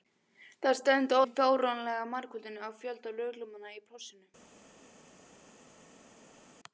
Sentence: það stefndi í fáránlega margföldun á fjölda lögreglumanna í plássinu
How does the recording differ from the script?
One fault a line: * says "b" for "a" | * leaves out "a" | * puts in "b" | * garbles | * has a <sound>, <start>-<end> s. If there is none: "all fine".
all fine